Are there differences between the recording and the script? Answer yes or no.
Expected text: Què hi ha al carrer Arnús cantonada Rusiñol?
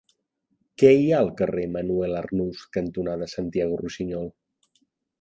yes